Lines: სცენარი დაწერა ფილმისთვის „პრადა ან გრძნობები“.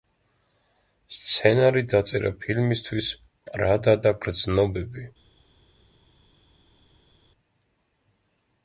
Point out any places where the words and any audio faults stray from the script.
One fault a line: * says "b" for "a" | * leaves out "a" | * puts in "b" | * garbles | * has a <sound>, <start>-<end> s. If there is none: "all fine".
* says "და" for "ან"